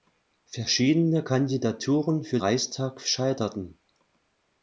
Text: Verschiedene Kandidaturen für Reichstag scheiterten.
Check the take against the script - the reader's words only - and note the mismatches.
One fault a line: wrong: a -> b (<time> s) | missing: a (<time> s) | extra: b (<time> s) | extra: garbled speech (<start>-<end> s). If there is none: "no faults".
no faults